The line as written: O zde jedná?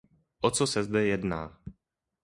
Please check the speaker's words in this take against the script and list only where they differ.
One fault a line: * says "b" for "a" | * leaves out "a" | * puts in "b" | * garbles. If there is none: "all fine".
* puts in "co se"